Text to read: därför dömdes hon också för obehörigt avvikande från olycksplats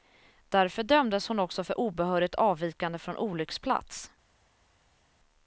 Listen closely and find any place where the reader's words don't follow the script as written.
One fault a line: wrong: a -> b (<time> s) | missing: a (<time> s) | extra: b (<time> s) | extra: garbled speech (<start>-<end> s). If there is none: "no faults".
no faults